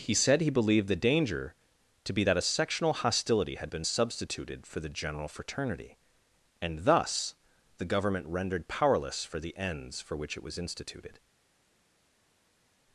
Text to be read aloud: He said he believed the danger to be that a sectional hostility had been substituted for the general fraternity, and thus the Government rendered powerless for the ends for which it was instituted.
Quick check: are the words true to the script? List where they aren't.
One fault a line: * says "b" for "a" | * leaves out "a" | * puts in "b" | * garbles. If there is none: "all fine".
all fine